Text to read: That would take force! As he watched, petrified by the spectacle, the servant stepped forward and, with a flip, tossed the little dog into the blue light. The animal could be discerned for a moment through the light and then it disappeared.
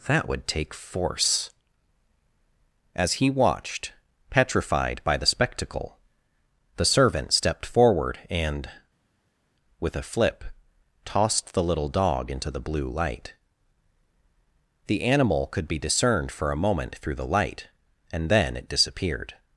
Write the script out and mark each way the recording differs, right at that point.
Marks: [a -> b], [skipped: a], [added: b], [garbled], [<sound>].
That would take force! As he watched, petrified by the spectacle, the servant stepped forward and, with a flip, tossed the little dog into the blue light. The animal could be discerned for a moment through the light and then it disappeared.